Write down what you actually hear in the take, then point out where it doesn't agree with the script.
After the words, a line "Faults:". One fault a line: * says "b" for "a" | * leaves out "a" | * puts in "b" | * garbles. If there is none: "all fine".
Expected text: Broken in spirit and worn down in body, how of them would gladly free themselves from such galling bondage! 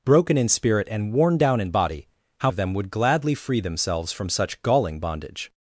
Broken in spirit and worn down in body, how of them would gladly free themselves from such galling bondage!
Faults:
all fine